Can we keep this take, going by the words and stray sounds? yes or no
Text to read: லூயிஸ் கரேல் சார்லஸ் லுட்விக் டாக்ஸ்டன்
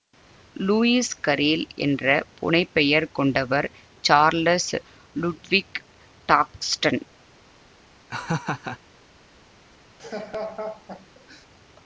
no